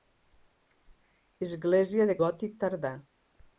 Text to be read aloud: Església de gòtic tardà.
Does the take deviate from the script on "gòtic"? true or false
false